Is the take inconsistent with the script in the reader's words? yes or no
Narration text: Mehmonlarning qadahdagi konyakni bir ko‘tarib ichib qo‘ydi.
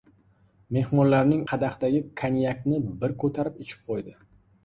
no